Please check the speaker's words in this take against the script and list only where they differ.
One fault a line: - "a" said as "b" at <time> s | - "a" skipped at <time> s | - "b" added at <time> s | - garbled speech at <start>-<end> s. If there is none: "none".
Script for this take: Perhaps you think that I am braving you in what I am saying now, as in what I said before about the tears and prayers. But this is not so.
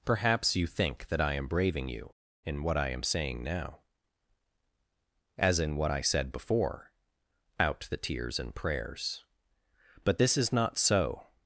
- "about" said as "out" at 7.6 s